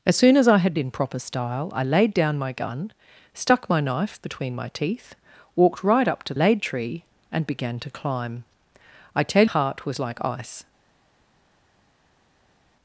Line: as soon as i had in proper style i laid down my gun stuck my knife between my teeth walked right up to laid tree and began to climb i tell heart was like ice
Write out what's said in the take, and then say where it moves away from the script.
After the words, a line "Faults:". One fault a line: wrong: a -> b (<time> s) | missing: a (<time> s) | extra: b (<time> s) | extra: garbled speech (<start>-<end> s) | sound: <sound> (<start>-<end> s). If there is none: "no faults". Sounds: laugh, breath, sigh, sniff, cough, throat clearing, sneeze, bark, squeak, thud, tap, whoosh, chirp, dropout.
as soon as i had in proper style i laid down my gun stuck my knife between my teeth walked right up to laid tree and began to climb i tell heart was like ice
Faults:
no faults